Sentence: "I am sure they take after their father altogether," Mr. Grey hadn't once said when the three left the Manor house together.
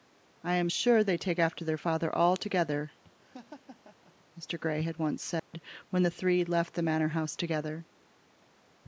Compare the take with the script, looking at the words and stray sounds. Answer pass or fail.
fail